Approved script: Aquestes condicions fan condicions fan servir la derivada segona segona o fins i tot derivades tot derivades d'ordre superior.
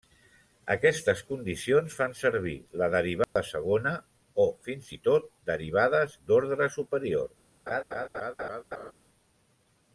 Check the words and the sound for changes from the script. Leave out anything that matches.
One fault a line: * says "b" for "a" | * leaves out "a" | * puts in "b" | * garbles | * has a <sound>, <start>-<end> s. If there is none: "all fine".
* leaves out "condicions fan"
* has a dropout, 3.2-3.4 s
* leaves out "segona"
* leaves out "tot derivades"
* has a laugh, 7.7-8.9 s